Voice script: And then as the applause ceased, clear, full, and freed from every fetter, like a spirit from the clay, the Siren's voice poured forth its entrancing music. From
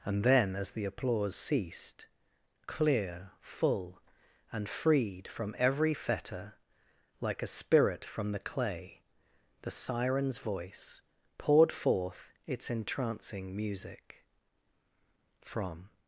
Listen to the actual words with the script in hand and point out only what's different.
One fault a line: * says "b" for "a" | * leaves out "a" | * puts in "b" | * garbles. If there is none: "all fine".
all fine